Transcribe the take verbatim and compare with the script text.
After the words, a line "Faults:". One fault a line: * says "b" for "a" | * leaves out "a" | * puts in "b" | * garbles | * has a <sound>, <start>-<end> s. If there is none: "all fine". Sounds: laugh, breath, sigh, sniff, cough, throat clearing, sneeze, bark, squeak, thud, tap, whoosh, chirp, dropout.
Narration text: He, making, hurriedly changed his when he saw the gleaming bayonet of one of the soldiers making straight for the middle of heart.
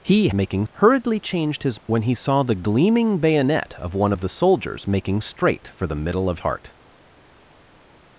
He, making, hurriedly changed his when he saw the gleaming bayonet of one of the soldiers making straight for the middle of heart.
Faults:
all fine